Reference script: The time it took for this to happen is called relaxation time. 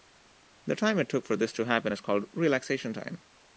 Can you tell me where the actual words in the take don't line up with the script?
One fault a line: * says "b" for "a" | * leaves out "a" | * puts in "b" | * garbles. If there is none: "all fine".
all fine